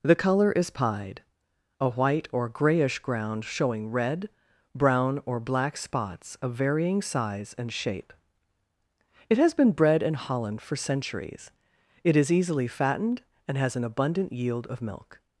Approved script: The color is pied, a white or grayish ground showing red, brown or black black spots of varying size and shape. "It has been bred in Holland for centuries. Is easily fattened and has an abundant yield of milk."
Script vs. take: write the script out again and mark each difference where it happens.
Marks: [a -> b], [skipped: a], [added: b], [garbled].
The color is pied, a white or grayish ground showing red, brown or black [skipped: black] spots of varying size and shape. "It has been bred in Holland for centuries. [added: It] Is easily fattened and has an abundant yield of milk."